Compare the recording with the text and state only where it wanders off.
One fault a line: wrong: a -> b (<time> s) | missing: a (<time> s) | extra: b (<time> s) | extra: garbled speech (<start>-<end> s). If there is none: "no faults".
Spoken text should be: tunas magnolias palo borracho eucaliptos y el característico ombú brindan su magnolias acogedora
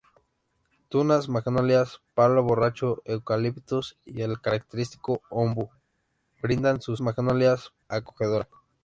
no faults